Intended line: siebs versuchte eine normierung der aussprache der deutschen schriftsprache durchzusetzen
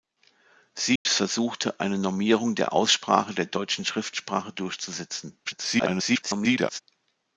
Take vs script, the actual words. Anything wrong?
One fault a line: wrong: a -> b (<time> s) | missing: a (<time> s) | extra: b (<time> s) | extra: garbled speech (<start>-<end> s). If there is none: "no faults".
extra: garbled speech (5.4-6.8 s)